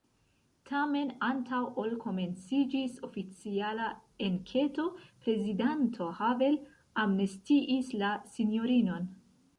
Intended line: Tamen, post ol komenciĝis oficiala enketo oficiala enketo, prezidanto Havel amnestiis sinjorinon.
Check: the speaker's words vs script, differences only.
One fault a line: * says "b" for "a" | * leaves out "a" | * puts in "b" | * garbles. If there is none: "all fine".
* says "antaŭ" for "post"
* leaves out "oficiala enketo"
* puts in "la"